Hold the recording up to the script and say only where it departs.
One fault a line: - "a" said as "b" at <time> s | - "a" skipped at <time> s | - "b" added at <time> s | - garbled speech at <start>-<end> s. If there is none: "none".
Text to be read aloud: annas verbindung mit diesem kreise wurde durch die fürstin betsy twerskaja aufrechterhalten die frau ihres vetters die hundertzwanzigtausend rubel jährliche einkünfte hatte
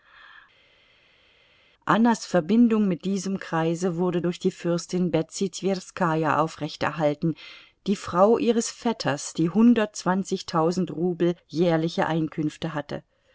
none